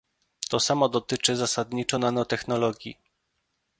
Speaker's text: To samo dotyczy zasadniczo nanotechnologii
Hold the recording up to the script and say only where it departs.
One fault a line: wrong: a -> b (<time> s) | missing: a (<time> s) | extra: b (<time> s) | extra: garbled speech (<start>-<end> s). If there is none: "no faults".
no faults